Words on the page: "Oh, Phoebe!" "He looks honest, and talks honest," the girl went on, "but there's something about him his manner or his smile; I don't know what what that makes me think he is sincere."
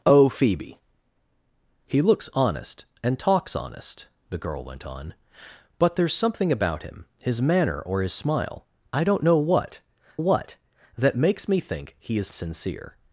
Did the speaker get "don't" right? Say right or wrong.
right